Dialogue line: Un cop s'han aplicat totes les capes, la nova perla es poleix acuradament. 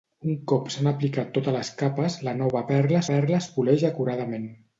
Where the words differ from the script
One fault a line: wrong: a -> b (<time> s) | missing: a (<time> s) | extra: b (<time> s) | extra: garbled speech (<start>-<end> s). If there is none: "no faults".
extra: perla (3.1 s)